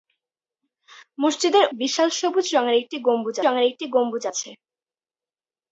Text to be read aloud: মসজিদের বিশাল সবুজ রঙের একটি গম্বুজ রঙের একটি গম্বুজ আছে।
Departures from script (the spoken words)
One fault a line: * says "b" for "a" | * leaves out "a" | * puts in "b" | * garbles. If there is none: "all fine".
all fine